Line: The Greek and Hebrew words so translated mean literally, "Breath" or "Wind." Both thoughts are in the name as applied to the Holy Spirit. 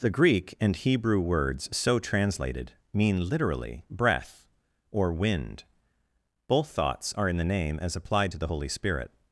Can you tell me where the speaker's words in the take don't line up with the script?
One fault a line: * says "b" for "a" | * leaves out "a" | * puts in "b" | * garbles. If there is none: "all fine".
all fine